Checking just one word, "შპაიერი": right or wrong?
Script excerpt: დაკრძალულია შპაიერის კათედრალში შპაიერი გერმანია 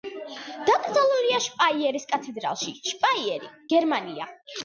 right